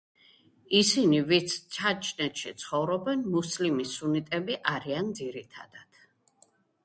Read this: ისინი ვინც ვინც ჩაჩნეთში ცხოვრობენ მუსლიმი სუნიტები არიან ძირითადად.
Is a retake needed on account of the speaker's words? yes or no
yes